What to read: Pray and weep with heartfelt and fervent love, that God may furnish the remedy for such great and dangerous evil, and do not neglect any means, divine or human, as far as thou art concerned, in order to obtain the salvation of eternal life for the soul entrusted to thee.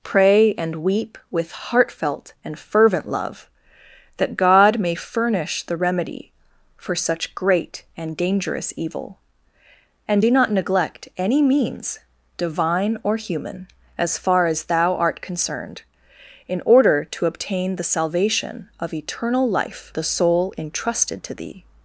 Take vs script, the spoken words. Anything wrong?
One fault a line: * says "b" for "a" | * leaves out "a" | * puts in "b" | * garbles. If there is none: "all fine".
* leaves out "for"